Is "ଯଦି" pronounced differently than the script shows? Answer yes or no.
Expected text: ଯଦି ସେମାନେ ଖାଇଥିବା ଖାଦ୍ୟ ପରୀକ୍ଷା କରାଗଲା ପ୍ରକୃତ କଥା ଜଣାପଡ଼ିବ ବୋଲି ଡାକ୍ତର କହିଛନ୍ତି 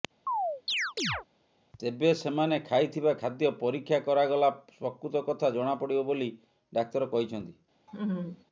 yes